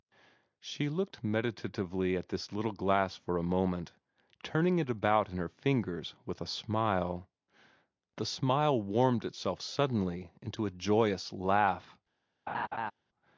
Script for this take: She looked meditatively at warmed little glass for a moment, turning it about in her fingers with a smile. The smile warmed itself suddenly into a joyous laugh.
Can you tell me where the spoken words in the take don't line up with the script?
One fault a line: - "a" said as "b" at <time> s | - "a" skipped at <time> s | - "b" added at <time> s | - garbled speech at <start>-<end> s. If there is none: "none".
- "warmed" said as "this" at 2.3 s